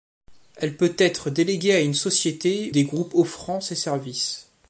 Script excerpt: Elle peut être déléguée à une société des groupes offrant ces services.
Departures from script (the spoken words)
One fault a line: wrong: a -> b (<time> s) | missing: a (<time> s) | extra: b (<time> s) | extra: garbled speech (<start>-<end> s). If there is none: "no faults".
no faults